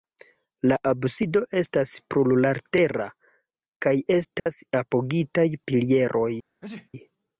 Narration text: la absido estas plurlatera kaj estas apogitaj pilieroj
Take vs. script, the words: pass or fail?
pass